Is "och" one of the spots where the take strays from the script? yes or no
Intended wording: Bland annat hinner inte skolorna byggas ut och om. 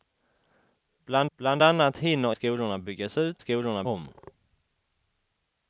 yes